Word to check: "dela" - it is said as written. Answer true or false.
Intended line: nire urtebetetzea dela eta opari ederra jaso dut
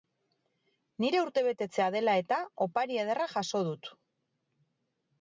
true